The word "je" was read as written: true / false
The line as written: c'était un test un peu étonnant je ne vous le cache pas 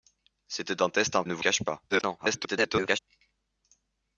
false